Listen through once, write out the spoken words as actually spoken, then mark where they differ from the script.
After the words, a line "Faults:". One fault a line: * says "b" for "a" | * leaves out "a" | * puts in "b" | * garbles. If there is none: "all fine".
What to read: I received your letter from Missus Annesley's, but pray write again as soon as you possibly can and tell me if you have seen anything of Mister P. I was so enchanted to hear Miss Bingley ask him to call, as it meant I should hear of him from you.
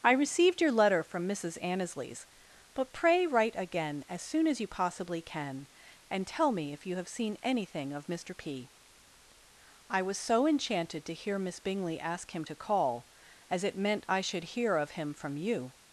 I received your letter from Missus Annesley's, but pray write again as soon as you possibly can and tell me if you have seen anything of Mister P. I was so enchanted to hear Miss Bingley ask him to call, as it meant I should hear of him from you.
Faults:
all fine